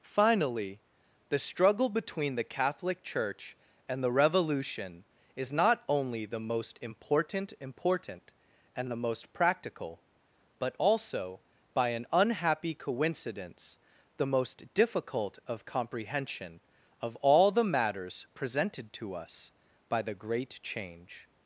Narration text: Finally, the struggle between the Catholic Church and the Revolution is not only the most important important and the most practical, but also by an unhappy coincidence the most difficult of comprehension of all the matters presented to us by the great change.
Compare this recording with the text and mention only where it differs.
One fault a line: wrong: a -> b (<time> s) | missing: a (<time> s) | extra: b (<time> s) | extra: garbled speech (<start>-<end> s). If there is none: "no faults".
no faults